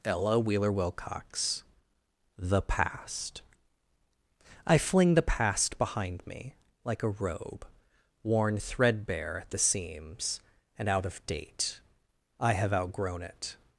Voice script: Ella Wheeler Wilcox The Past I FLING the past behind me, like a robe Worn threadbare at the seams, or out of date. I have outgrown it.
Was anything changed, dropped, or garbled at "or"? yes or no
yes